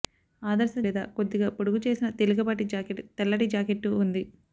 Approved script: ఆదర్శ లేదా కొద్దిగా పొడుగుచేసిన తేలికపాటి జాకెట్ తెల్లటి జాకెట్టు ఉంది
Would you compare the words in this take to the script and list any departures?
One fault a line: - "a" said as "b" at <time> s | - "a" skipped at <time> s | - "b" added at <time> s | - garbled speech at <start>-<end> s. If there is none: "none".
none